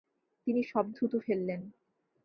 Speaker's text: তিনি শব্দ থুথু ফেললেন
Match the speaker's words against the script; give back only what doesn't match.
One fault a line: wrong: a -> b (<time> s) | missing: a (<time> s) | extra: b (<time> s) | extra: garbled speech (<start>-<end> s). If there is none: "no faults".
no faults